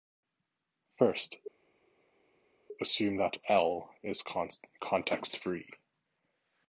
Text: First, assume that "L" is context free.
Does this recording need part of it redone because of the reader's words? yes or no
no